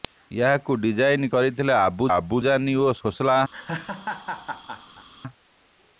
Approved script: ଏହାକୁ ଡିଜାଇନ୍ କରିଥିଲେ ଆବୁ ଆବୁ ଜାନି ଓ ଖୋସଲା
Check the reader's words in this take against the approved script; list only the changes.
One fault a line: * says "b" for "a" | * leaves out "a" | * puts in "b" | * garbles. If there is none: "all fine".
all fine